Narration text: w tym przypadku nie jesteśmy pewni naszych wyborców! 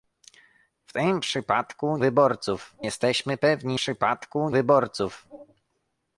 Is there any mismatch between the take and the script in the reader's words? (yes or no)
yes